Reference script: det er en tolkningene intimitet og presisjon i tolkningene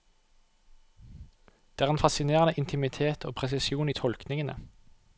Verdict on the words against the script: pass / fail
fail